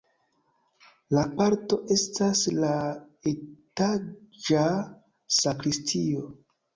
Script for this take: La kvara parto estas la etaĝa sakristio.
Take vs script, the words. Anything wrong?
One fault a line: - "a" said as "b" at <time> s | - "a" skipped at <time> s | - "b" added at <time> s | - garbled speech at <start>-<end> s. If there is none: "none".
- "kvara" skipped at 1.2 s